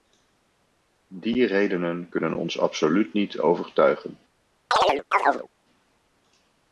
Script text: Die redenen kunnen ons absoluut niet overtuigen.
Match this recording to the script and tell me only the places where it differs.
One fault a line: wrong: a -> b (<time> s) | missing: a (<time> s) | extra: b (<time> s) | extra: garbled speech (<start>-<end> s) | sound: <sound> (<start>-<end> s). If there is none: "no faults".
sound: chirp (4.7-5.5 s)